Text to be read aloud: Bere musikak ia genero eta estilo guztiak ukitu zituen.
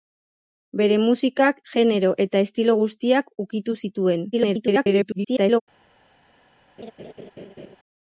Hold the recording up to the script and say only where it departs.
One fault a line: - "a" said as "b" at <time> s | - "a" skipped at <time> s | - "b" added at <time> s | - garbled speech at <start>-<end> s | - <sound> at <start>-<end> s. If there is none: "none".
- "ia" skipped at 1.6 s
- garbled speech at 4.3-5.6 s
- laugh at 6.8-7.8 s